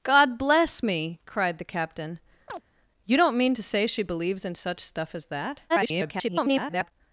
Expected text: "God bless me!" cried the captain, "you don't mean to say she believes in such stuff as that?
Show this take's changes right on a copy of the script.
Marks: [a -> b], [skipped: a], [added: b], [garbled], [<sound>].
"God bless me!" cried the captain, [chirp] "you don't mean to say she believes in such stuff as that? [garbled]